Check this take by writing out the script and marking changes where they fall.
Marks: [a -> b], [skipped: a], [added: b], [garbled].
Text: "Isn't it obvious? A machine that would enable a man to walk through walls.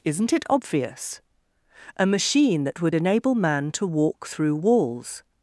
"Isn't it obvious? A machine that would enable [skipped: a] man to walk through walls.